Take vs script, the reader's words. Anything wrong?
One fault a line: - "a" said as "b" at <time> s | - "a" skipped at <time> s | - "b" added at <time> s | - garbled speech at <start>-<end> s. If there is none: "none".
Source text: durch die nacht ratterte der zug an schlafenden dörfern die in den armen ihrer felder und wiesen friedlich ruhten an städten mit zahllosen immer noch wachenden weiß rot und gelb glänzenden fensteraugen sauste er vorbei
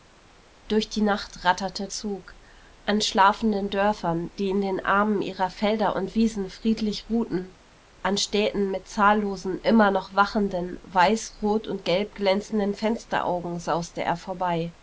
- "der" skipped at 1.9 s